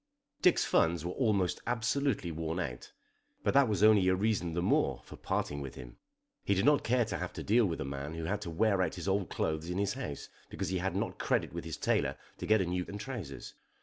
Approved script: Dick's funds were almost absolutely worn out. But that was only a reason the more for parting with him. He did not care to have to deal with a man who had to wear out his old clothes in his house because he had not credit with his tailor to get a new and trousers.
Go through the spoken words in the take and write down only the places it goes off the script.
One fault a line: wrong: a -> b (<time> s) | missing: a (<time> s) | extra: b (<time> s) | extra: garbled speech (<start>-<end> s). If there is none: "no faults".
no faults